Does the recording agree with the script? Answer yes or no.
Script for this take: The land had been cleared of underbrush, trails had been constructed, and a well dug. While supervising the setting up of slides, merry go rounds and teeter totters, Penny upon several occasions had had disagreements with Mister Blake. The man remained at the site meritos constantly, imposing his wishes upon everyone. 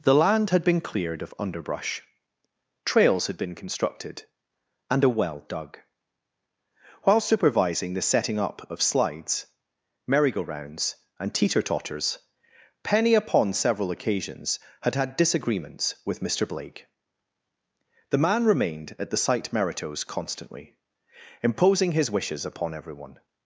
yes